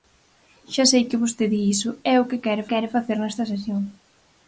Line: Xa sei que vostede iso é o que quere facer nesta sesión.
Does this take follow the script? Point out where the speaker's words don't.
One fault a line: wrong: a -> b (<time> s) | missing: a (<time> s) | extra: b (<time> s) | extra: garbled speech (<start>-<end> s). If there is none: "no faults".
extra: quere (2.7 s)